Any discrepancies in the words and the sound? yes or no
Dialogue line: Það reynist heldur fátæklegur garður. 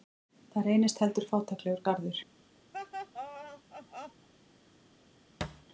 yes